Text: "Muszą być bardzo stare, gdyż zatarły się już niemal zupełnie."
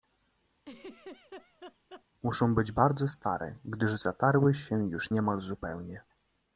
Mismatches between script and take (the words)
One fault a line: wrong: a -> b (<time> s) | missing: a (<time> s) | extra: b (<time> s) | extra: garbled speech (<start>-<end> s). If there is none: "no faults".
no faults